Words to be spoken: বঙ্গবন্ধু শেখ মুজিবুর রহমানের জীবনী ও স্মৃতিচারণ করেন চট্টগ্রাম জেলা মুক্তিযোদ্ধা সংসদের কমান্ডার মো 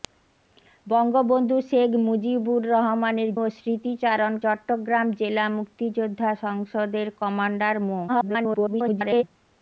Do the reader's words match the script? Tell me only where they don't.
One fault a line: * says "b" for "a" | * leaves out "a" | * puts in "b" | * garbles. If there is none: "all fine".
* leaves out "জীবনী"
* leaves out "করেন"
* garbles